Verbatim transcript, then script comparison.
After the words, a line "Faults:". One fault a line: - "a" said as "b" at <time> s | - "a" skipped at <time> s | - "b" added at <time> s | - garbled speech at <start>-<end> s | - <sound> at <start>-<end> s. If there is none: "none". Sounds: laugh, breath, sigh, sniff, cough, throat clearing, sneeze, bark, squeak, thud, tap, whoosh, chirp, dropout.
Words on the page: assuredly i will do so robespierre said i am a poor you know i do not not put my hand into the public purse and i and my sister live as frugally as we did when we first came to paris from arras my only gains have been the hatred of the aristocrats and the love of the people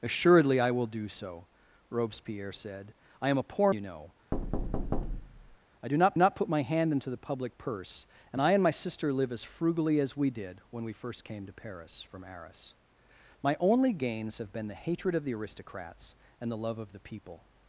assuredly i will do so robespierre said i am a poor you know i do not not put my hand into the public purse and i and my sister live as frugally as we did when we first came to paris from arras my only gains have been the hatred of the aristocrats and the love of the people
Faults:
- thud at 4.3-5.6 s